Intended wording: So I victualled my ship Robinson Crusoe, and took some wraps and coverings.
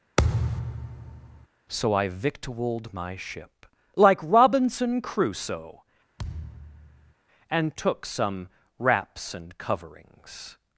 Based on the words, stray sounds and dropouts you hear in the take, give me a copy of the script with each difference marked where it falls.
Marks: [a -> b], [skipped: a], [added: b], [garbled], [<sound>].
[thud] So I victualled my ship [added: like] Robinson Crusoe, [thud] and took some wraps and coverings.